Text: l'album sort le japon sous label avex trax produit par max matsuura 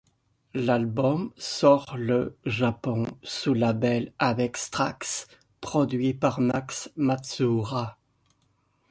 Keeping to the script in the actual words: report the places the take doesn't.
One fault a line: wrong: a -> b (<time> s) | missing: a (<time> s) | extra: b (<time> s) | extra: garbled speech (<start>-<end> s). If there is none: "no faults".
no faults